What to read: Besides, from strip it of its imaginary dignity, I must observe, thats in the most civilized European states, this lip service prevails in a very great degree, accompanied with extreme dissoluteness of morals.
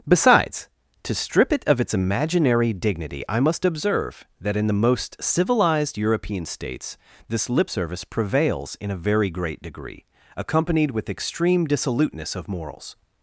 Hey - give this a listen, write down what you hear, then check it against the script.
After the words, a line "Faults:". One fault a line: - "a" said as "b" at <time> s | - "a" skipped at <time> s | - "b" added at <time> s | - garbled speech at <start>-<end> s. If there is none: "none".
Besides, to strip it of its imaginary dignity, I must observe, that in the most civilized European states, this lip service prevails in a very great degree, accompanied with extreme dissoluteness of morals.
Faults:
- "from" said as "to" at 1.0 s
- "thats" said as "that" at 4.4 s